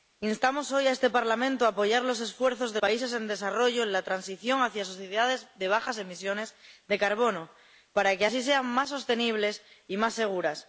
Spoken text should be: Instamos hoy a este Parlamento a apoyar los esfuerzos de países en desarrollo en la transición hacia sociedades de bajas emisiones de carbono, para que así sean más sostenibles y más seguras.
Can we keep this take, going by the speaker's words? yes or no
yes